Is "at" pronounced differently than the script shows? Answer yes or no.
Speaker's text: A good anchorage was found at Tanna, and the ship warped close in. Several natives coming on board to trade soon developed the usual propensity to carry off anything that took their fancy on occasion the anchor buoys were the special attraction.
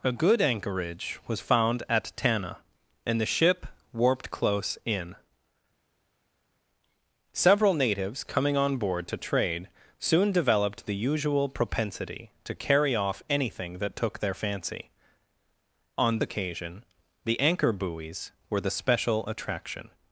no